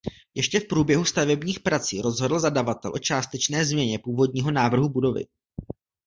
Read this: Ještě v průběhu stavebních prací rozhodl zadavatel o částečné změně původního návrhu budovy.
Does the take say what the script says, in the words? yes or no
yes